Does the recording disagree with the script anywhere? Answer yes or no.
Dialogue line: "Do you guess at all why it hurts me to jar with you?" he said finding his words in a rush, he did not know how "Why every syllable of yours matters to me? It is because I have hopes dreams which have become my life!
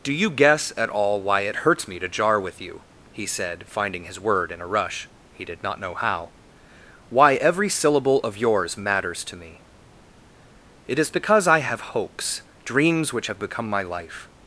yes